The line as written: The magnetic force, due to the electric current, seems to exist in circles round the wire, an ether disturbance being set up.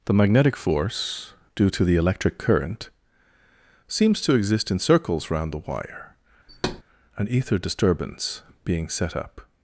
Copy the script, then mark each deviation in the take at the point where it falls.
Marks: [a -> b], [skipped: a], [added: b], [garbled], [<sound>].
The magnetic force, due to the electric current, seems to exist in circles round the wire, [thud] an ether disturbance being set up.